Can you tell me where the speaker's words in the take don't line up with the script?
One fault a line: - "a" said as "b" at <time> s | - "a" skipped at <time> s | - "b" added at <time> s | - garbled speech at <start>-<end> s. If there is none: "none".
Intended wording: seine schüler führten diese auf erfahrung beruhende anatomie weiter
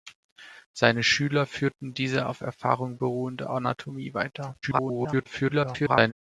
- garbled speech at 4.6-6.1 s